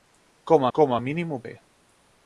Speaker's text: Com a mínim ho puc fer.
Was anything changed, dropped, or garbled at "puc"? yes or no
yes